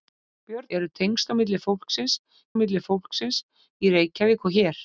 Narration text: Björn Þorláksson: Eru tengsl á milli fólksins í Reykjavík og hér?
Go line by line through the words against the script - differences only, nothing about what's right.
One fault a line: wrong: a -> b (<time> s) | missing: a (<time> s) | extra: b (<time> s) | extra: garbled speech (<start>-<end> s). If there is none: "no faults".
missing: Þorláksson (0.7 s)
extra: milli fólksins (2.6 s)